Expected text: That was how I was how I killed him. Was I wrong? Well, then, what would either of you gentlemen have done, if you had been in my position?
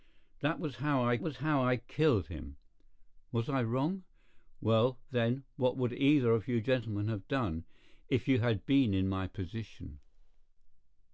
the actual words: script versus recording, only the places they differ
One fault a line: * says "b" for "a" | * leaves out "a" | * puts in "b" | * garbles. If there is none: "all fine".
all fine